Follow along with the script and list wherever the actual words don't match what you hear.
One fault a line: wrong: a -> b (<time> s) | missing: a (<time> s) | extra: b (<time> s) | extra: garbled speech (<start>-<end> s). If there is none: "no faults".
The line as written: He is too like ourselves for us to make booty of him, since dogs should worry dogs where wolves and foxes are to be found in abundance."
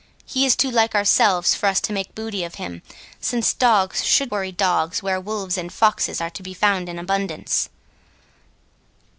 no faults